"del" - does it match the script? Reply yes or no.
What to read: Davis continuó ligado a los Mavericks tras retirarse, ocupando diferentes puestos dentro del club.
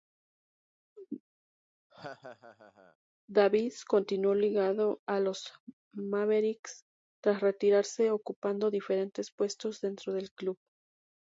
yes